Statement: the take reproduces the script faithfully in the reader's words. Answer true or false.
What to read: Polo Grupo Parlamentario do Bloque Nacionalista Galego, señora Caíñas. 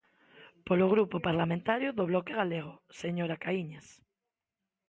false